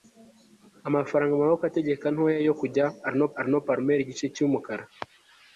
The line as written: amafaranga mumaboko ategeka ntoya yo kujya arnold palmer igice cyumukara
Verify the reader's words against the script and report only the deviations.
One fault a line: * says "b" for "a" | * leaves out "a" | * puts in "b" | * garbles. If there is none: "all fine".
* puts in "arnold"